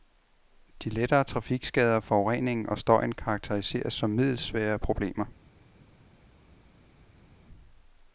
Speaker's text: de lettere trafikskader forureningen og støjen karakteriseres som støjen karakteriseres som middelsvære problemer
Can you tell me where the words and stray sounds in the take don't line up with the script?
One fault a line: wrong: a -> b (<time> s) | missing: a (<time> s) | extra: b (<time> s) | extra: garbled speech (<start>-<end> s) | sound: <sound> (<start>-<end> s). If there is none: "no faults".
missing: støjen karakteriseres som (4.1 s)